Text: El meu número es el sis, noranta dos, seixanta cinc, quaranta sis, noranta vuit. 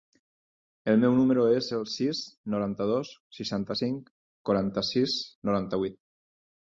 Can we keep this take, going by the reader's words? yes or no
yes